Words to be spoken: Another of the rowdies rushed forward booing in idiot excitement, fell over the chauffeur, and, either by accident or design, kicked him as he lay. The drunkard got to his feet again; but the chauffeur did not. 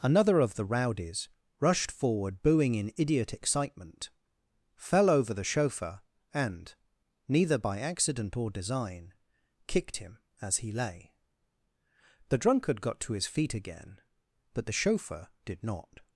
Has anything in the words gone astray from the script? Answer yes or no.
yes